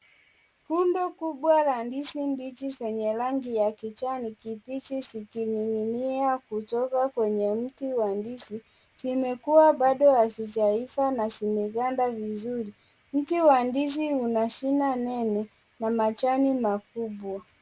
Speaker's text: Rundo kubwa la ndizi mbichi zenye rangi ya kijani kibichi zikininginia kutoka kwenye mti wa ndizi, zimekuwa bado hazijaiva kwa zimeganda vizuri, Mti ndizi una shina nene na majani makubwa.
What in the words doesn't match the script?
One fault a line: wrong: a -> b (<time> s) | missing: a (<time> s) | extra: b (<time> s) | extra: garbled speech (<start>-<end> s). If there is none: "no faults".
wrong: kwa -> na (11.1 s)
extra: wa (13.4 s)